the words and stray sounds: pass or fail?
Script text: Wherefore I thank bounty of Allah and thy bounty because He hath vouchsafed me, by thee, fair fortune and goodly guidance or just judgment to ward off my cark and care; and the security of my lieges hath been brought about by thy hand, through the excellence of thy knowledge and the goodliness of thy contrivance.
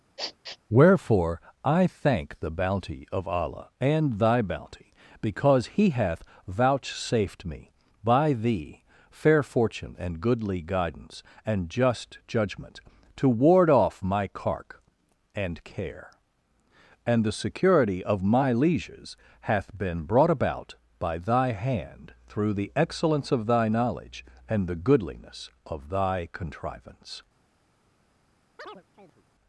fail